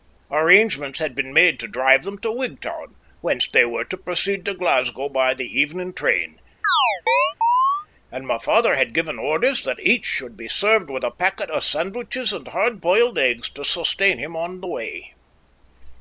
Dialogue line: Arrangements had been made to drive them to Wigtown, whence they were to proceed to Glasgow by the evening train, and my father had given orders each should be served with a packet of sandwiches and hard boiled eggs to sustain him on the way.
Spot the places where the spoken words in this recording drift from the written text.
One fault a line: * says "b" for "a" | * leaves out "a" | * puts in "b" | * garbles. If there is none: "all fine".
* puts in "that"